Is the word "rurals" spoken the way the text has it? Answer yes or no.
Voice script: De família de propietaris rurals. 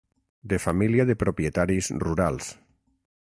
yes